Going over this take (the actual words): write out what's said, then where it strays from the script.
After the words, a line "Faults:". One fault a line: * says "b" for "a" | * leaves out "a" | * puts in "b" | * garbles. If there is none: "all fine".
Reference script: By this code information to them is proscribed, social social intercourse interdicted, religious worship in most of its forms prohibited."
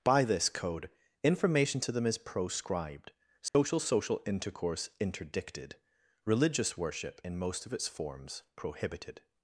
By this code information to them is proscribed, social social intercourse interdicted, religious worship in most of its forms prohibited."
Faults:
all fine